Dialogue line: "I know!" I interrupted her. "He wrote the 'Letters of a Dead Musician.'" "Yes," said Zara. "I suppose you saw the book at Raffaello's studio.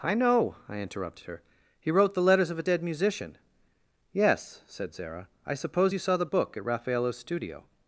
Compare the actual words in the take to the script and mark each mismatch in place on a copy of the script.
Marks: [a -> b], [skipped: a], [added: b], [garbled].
"I know!" I interrupted her. "He wrote the 'Letters of a Dead Musician.'" "Yes," said Zara. "I suppose you saw the book at Raffaello's studio.